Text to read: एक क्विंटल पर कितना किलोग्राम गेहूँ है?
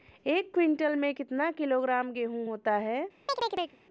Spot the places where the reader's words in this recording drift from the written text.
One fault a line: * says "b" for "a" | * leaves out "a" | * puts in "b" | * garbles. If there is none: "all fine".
* says "में" for "पर"
* puts in "होता"